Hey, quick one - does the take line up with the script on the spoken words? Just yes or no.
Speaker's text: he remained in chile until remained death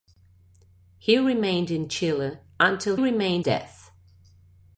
yes